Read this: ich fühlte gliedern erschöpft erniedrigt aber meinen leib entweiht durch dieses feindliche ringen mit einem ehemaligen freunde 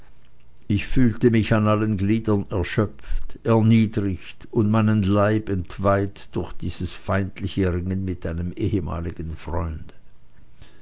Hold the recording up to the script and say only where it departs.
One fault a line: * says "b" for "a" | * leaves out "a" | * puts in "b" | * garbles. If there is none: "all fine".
* puts in "mich an allen"
* says "und" for "aber"